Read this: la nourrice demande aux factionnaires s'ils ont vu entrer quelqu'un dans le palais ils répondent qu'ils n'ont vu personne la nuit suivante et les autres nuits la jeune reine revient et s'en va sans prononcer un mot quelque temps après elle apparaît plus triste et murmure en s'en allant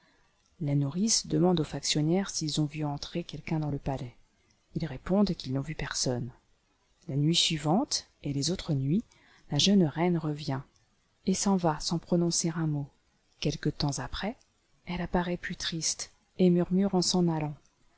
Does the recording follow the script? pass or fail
pass